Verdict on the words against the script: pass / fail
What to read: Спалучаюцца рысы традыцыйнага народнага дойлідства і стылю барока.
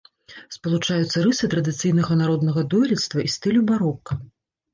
pass